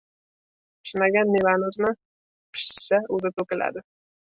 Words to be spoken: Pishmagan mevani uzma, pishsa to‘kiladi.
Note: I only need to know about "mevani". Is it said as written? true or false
true